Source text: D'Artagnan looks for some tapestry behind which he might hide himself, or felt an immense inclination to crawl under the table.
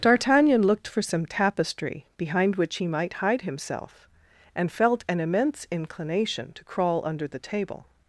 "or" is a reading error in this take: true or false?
true